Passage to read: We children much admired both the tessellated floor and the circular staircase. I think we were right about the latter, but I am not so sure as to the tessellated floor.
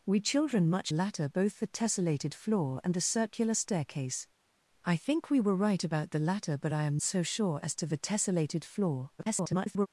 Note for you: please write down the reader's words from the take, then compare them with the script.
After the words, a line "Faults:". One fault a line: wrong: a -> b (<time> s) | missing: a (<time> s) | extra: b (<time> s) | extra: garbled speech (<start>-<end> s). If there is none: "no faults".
We children much latter both the tessellated floor and the circular staircase. I think we were right about the latter, but I am so sure as to the tessellated floor. [garbled]
Faults:
wrong: admired -> latter (0.9 s)
missing: not (7.0 s)
extra: garbled speech (9.2-9.9 s)